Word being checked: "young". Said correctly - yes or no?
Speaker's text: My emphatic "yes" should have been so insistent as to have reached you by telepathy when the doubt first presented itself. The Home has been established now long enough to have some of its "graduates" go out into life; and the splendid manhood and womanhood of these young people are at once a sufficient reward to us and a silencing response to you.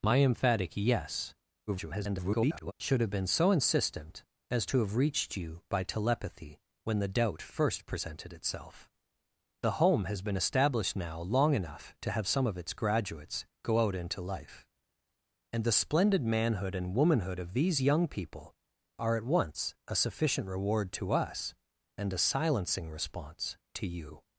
yes